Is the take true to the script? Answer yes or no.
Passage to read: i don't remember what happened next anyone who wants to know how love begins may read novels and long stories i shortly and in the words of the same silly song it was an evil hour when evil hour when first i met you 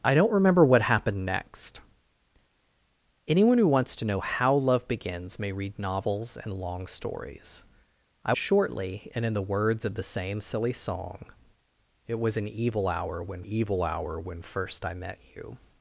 yes